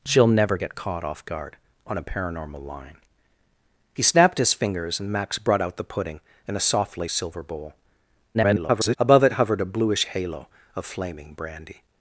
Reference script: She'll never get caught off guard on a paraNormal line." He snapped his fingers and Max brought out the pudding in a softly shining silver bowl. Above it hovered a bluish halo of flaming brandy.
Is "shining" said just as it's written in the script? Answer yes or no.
no